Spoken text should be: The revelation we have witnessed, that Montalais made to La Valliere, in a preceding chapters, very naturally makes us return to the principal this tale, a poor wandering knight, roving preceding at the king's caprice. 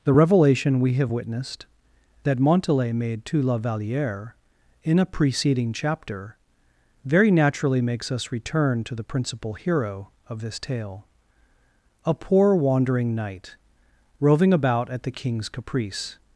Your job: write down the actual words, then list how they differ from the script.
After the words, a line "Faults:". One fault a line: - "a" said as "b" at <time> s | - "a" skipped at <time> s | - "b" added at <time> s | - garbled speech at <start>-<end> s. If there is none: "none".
The revelation we have witnessed, that Montalais made to La Valliere, in a preceding chapter, very naturally makes us return to the principal hero of this tale, a poor wandering knight, roving about at the king's caprice.
Faults:
- "chapters" said as "chapter" at 5.7 s
- "hero of" added at 9.5 s
- "preceding" said as "about" at 14.5 s